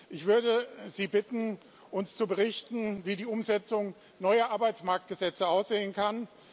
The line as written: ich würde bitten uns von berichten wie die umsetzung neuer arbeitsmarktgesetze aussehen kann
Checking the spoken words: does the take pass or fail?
fail